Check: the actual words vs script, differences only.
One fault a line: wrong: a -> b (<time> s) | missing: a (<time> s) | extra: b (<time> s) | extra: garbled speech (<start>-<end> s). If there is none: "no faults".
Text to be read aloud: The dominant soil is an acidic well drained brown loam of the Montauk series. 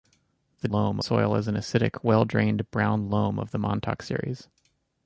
wrong: dominant -> loam (0.7 s)